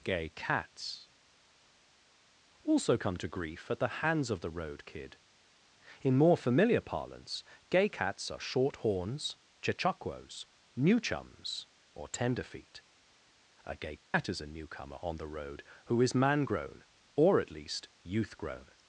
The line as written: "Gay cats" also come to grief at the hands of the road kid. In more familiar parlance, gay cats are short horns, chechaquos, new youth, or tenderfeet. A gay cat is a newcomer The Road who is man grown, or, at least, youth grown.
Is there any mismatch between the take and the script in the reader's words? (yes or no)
yes